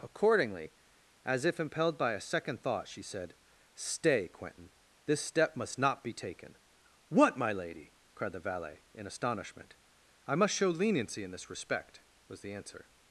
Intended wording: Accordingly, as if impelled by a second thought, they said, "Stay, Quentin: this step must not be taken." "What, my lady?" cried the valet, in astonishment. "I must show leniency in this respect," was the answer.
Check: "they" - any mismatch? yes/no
yes